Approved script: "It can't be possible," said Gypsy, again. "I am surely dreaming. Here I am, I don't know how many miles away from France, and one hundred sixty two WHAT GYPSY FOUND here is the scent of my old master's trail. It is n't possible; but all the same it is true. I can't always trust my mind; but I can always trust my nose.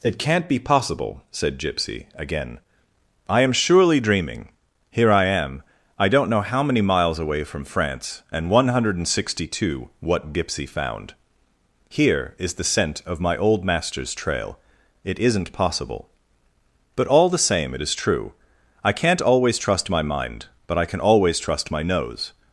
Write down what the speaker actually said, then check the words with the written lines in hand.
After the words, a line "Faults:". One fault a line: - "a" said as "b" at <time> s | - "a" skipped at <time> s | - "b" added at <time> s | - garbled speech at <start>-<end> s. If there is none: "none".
"It can't be possible," said Gypsy, again. "I am surely dreaming. Here I am, I don't know how many miles away from France, and one hundred sixty two WHAT GYPSY FOUND here is the scent of my old master's trail. It is n't possible; but all the same it is true. I can't always trust my mind; but I can always trust my nose.
Faults:
none